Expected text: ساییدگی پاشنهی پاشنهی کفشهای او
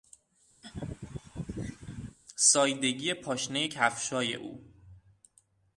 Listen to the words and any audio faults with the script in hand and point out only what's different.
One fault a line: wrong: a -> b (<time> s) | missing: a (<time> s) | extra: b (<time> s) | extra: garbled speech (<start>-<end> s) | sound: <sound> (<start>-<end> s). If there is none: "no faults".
sound: laugh (0.6-2.2 s)
missing: پاشنهی (3.7 s)